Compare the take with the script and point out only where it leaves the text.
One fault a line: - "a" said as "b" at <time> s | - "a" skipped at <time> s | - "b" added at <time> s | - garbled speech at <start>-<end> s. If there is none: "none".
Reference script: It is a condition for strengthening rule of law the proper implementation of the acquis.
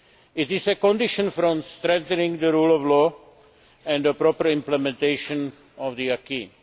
- "the" added at 2.4 s
- "and" added at 3.9 s